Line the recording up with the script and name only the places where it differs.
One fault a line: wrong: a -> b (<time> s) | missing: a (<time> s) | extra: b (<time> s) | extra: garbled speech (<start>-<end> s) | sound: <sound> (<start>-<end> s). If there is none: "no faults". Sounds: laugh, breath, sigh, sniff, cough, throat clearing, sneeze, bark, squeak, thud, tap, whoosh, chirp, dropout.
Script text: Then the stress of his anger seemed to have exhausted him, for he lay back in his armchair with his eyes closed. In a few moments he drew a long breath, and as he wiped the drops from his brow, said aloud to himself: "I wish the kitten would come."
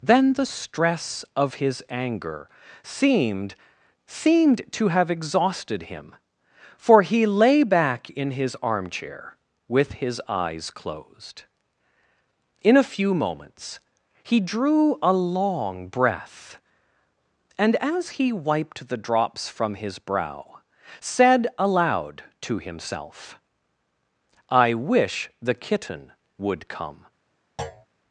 extra: seemed (4.1 s)
sound: thud (27.6-27.9 s)